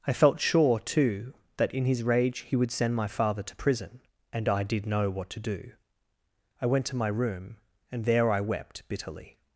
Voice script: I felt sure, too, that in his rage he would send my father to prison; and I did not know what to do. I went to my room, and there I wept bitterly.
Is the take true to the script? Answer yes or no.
no